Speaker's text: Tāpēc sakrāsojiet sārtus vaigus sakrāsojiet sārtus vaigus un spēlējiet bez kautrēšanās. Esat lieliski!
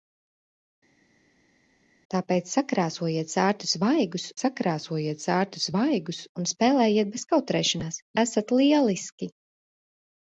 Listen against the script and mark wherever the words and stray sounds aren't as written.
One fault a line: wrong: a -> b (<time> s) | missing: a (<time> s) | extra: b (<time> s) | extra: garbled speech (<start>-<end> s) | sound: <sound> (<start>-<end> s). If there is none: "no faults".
no faults